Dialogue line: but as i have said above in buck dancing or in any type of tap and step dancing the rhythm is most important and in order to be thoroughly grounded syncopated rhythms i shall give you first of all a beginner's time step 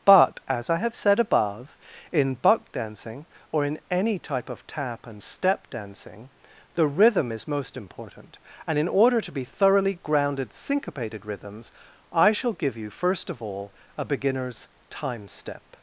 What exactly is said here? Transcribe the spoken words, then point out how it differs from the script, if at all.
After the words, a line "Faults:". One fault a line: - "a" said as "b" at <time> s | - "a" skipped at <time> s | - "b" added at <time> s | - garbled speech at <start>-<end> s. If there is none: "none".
but as i have said above in buck dancing or in any type of tap and step dancing the rhythm is most important and in order to be thoroughly grounded syncopated rhythms i shall give you first of all a beginner's time step
Faults:
none